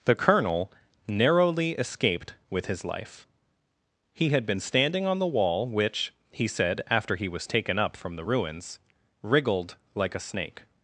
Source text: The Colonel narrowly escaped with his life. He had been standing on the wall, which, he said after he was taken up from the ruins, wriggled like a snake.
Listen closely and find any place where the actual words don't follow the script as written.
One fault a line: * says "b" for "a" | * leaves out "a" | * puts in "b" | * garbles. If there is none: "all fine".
all fine